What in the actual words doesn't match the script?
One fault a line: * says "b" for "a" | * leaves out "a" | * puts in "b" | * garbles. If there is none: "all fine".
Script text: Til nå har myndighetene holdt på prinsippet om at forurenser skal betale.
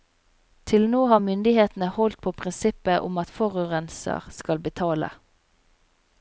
all fine